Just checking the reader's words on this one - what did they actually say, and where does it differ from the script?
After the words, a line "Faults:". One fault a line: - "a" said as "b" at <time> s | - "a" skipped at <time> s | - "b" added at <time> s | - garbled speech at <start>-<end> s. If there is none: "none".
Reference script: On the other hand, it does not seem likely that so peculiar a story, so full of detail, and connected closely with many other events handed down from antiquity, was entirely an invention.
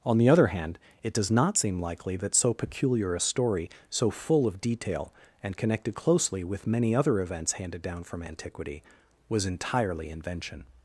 On the other hand, it does not seem likely that so peculiar a story, so full of detail, and connected closely with many other events handed down from antiquity, was entirely invention.
Faults:
- "an" skipped at 10.1 s